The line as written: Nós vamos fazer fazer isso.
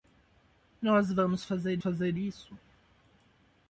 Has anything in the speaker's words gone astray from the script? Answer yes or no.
no